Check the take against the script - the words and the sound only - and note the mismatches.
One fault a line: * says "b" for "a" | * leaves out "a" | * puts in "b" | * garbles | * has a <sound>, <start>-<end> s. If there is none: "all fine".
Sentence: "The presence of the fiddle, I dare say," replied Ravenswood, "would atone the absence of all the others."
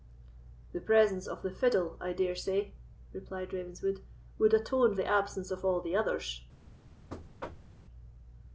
* has a thud, 7.1-7.8 s